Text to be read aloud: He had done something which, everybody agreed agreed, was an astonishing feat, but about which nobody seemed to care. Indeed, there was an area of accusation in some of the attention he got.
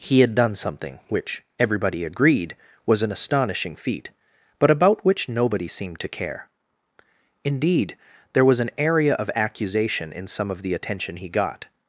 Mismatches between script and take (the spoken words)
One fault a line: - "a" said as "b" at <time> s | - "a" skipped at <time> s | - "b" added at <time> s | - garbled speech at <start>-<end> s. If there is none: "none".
- "agreed" skipped at 2.5 s